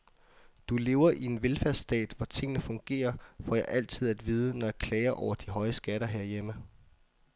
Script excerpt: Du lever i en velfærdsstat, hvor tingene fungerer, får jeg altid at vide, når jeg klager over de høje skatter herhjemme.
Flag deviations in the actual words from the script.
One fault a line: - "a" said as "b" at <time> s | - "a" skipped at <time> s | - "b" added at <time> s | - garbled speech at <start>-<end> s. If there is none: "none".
none